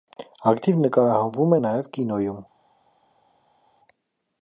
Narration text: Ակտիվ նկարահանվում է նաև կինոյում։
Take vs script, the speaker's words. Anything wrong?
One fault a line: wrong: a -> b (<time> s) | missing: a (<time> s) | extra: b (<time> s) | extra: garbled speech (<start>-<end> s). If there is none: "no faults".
no faults